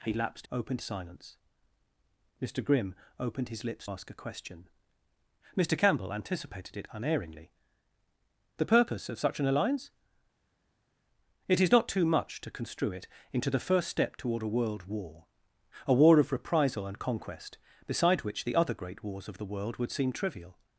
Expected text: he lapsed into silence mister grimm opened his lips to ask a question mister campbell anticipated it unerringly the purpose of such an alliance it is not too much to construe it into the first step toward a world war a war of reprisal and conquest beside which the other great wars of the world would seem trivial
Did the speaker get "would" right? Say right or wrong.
right